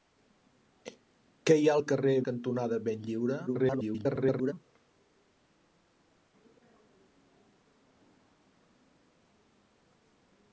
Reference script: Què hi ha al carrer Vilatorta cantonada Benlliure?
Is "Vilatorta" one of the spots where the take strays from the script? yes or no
yes